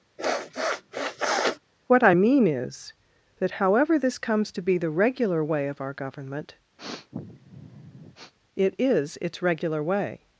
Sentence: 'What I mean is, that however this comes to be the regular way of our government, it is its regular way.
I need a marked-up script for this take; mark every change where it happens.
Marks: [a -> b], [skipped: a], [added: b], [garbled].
'What I mean is, that however this comes to be the regular way of our government, it is its regular way.